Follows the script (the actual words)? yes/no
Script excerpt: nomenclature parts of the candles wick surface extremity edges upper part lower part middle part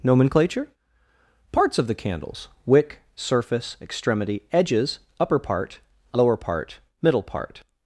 yes